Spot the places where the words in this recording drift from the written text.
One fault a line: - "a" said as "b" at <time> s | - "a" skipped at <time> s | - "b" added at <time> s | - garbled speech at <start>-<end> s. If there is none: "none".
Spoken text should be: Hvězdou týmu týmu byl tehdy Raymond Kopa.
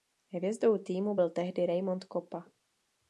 - "týmu" skipped at 1.1 s